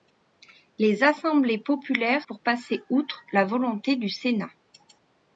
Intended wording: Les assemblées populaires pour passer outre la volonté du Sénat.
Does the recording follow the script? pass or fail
pass